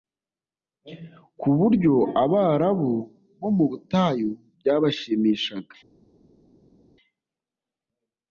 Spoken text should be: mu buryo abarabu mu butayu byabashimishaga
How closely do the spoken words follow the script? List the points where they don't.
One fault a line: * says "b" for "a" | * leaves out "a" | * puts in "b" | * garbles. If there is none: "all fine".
* says "ku" for "mu"
* puts in "bo"